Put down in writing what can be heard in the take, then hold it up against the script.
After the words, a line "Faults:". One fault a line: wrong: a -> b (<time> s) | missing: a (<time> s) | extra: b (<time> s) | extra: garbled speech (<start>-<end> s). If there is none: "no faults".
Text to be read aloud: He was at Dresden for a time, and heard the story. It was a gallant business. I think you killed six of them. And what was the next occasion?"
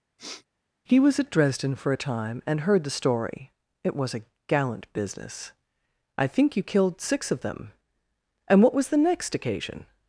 He was at Dresden for a time, and heard the story. It was a gallant business. I think you killed six of them. And what was the next occasion?"
Faults:
no faults